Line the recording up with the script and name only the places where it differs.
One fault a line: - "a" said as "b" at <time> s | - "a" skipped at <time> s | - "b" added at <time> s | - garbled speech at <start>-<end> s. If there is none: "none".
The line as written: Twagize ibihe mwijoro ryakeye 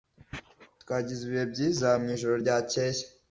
- "byiza" added at 1.5 s